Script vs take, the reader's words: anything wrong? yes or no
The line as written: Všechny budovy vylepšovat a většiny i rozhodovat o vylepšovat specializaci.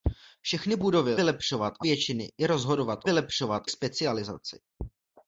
no